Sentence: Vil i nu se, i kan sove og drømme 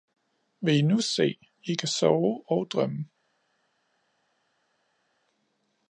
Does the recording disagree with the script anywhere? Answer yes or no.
no